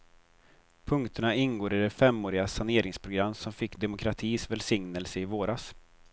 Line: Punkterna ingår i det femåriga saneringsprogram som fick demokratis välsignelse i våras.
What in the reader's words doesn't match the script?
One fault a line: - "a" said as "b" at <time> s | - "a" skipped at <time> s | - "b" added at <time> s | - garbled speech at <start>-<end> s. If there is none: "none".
none